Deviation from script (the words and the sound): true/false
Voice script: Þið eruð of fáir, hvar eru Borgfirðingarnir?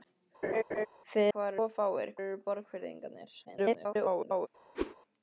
true